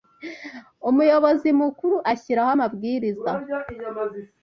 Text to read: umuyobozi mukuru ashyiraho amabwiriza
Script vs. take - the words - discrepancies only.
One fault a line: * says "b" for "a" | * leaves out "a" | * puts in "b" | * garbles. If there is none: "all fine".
all fine